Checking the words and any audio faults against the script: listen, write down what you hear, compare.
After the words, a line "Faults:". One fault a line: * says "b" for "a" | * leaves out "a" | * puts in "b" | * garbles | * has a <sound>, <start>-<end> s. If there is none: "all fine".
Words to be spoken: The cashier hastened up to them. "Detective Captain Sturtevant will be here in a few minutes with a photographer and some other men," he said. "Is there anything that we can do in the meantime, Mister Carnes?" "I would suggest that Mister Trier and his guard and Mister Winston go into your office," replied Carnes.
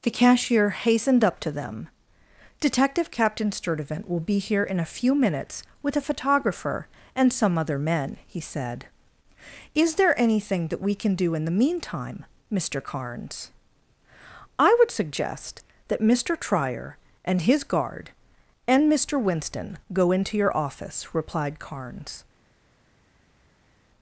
The cashier hastened up to them. "Detective Captain Sturtevant will be here in a few minutes with a photographer and some other men," he said. "Is there anything that we can do in the meantime, Mister Carnes?" "I would suggest that Mister Trier and his guard and Mister Winston go into your office," replied Carnes.
Faults:
all fine